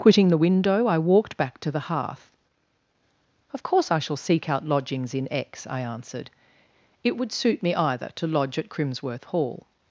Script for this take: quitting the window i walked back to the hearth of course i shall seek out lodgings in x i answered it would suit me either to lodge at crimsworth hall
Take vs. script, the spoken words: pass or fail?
pass